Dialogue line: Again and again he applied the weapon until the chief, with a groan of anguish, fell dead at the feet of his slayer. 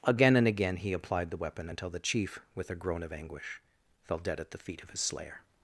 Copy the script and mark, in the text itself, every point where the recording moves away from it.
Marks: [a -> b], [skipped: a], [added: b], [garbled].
Again and again he applied the weapon until the chief, with a groan of anguish, fell dead at the feet of his slayer.